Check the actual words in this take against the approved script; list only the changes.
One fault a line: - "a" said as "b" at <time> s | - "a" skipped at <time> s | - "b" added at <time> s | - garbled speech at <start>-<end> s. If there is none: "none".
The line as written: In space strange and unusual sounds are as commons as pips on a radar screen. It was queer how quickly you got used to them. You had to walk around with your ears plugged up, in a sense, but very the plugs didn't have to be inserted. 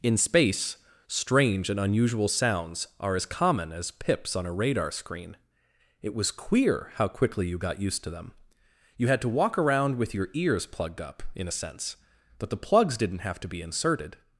- "commons" said as "common" at 3.3 s
- "very" skipped at 12.5 s